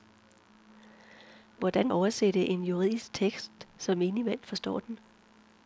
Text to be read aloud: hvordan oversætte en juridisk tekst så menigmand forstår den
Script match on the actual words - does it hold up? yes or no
yes